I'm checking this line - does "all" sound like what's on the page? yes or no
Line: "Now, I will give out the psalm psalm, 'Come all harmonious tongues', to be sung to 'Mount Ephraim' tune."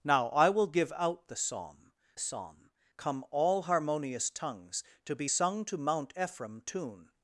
yes